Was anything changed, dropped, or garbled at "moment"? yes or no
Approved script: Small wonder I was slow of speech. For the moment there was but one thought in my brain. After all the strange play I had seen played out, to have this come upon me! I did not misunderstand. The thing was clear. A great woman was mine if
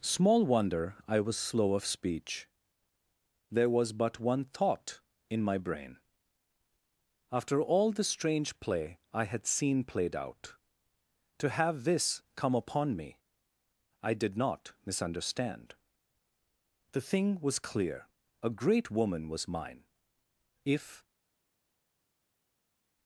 yes